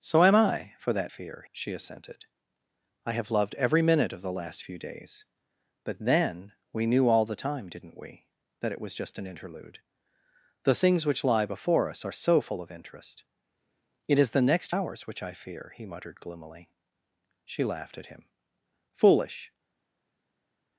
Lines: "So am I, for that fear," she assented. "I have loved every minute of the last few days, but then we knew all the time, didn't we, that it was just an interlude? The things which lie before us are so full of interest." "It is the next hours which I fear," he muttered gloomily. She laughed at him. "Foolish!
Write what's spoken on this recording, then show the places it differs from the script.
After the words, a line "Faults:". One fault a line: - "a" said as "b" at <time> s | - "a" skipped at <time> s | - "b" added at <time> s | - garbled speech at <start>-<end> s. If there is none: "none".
"So am I, for that fear," she assented. "I have loved every minute of the last few days, but then we knew all the time, didn't we, that it was just an interlude? The things which lie before us are so full of interest." "It is the next hours which I fear," he muttered gloomily. She laughed at him. "Foolish!
Faults:
none